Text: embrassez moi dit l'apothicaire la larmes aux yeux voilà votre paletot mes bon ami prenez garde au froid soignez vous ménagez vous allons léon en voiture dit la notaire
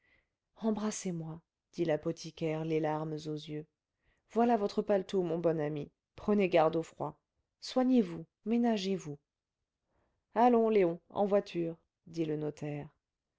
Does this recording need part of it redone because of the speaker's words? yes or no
yes